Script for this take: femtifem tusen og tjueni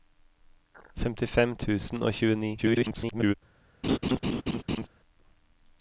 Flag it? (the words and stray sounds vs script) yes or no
yes